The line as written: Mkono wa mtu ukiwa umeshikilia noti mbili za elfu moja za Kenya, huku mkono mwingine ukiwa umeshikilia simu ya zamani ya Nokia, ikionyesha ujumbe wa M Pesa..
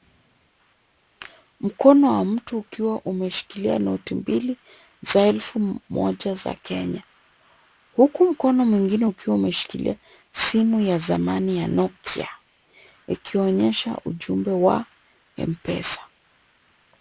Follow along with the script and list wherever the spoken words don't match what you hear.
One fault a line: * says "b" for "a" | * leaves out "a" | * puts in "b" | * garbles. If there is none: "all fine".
all fine